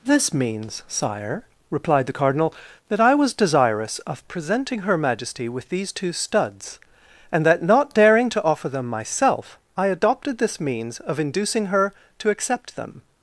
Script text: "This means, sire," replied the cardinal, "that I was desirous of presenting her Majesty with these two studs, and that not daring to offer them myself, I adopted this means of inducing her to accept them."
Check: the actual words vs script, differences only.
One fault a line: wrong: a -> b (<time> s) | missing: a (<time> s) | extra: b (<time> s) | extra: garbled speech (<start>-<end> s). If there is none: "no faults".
no faults